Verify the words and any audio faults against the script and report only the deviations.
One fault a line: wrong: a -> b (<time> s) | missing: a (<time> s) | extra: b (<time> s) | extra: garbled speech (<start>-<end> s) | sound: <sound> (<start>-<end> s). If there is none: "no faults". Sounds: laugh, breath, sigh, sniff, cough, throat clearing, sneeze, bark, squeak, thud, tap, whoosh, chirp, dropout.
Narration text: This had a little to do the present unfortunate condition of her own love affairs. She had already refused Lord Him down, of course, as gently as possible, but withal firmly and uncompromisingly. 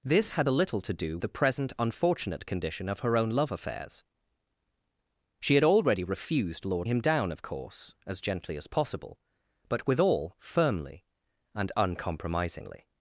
no faults